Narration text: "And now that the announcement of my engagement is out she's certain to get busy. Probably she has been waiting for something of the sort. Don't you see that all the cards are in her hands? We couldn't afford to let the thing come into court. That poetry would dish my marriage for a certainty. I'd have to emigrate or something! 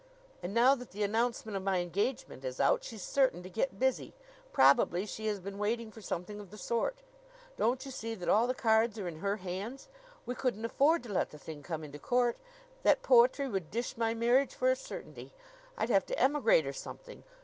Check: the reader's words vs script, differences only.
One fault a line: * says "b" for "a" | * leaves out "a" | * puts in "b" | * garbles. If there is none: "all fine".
all fine